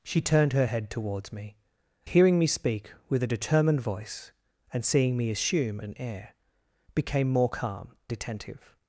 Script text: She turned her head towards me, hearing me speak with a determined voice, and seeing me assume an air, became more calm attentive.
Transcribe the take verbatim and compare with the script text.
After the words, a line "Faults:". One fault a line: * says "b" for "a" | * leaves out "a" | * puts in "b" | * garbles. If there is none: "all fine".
She turned her head towards me, hearing me speak with a determined voice, and seeing me assume an air, became more calm attentive.
Faults:
all fine